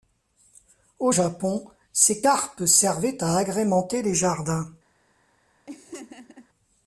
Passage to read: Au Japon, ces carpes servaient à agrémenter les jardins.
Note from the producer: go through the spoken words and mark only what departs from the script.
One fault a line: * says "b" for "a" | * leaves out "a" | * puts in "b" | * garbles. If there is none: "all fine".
all fine